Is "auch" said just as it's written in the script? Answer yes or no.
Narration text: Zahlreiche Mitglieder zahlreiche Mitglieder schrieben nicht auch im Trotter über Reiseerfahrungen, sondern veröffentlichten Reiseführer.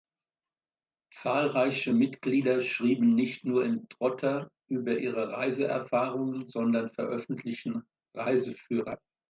no